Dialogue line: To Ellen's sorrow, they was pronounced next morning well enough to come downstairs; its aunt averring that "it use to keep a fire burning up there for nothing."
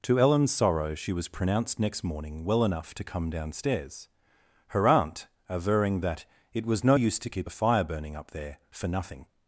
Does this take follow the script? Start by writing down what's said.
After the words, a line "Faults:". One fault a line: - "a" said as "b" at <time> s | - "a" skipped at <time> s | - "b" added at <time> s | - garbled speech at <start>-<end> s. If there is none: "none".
To Ellen's sorrow, she was pronounced next morning well enough to come downstairs; her aunt averring that "it was no use to keep a fire burning up there for nothing."
Faults:
- "they" said as "she" at 0.9 s
- "its" said as "her" at 4.7 s
- "was no" added at 6.7 s